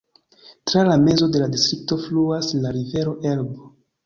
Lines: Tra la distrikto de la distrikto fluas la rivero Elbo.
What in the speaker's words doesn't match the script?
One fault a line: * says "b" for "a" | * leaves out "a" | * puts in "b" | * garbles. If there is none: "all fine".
* says "mezo" for "distrikto"